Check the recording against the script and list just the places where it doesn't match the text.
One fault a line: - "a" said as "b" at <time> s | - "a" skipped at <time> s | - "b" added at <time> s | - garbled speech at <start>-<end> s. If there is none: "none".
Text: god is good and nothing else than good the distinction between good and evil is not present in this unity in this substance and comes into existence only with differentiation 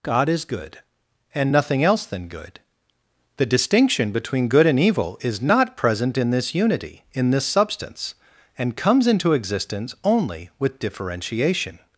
none